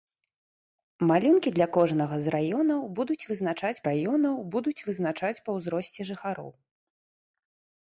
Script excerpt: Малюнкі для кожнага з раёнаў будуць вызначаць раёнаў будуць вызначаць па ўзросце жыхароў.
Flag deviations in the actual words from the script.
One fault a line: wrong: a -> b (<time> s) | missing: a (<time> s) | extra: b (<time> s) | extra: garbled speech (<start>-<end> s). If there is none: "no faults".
no faults